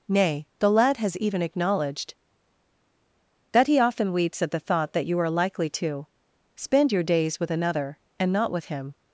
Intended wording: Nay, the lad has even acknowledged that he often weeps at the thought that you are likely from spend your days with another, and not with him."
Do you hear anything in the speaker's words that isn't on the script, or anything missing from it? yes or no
yes